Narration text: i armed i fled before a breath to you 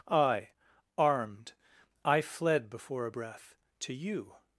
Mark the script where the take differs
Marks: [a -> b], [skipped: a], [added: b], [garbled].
i armed i fled before a breath to you